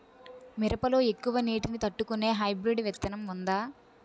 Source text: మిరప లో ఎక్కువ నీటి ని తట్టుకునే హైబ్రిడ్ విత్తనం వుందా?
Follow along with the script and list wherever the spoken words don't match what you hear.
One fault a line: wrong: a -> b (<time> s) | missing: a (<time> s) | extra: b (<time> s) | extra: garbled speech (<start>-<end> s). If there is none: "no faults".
no faults